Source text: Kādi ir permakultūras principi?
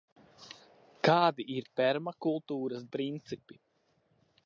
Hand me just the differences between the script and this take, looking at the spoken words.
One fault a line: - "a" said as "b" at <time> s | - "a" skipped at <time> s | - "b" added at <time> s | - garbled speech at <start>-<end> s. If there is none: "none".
none